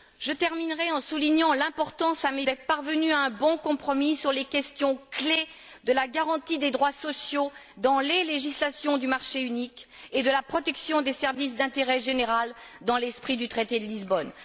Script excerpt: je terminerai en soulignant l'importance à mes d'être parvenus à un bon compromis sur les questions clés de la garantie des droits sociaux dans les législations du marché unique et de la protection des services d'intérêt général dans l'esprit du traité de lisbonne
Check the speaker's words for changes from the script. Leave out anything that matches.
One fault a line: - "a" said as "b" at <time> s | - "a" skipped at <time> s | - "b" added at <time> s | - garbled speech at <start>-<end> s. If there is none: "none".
none